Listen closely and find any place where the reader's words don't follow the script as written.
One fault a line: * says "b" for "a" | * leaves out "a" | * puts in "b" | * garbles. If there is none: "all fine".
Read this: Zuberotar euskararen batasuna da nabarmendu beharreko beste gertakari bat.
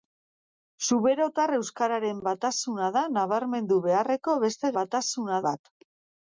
* says "batasuna" for "gertakari"